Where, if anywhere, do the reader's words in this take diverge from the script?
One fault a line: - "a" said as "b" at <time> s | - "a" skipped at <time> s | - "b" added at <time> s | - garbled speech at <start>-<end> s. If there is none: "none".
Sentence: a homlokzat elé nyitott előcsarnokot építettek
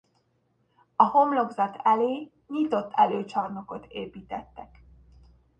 none